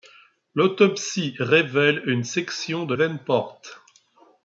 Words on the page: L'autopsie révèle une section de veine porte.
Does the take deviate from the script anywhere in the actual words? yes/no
no